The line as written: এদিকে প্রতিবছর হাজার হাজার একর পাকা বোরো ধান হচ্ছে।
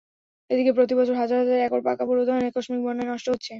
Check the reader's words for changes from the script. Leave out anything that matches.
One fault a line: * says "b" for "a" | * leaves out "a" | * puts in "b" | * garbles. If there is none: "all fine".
* puts in "আকস্মিক বন্যায় নষ্ট"